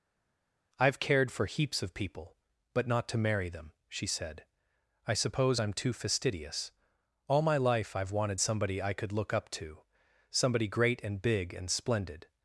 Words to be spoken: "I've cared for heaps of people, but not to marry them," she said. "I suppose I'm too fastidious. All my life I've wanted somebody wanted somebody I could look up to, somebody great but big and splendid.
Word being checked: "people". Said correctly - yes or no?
yes